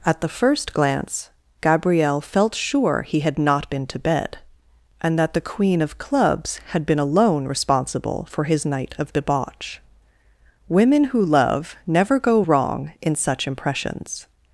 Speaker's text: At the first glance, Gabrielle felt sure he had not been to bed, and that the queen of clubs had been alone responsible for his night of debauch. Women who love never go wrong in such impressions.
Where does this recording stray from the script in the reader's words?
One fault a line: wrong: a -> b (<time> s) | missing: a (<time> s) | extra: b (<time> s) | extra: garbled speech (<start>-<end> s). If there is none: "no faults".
no faults